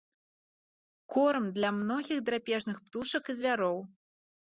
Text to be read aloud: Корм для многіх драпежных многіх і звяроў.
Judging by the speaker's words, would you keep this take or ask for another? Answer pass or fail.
fail